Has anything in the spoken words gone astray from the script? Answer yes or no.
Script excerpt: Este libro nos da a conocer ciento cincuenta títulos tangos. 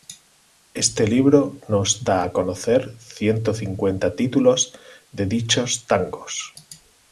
yes